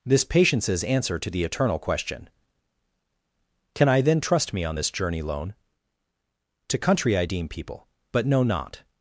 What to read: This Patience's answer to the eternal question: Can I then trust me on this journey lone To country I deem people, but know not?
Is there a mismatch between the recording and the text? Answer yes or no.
no